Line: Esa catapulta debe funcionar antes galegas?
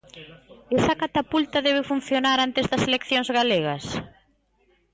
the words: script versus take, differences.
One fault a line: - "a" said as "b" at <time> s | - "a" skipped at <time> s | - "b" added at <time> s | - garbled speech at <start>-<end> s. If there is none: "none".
- "das eleccións" added at 2.7 s